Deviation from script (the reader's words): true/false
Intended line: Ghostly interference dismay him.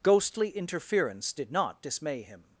true